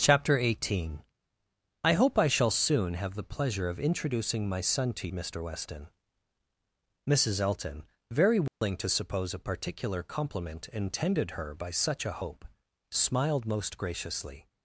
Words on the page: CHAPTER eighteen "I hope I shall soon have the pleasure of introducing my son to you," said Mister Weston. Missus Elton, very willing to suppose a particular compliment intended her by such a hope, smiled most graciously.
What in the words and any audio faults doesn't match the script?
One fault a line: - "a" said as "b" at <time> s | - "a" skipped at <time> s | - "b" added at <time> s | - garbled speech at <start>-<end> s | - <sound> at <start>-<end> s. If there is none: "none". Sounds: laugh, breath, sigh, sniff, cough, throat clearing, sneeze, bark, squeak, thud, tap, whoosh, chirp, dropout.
- "you said" skipped at 5.1 s
- dropout at 8.5-8.6 s